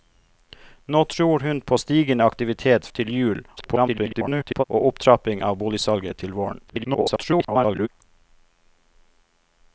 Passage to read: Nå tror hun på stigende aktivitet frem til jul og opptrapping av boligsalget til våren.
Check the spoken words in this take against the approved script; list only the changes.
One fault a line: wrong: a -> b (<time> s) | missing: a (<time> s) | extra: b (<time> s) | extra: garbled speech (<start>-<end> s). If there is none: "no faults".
missing: frem (2.9 s)
extra: garbled speech (3.6-4.6 s)
extra: garbled speech (6.7-7.9 s)